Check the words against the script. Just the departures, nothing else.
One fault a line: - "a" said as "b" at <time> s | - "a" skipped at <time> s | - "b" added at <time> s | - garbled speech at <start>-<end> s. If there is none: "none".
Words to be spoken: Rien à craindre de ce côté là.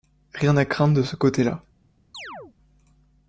none